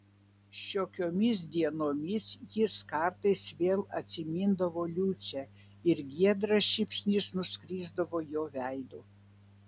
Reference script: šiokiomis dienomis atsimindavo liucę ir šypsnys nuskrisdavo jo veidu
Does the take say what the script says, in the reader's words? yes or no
no